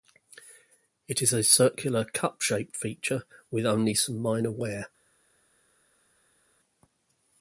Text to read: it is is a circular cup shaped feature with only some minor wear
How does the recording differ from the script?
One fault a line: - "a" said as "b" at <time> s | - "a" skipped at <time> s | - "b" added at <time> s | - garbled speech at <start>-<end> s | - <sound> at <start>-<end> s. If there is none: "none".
- "is" skipped at 1.3 s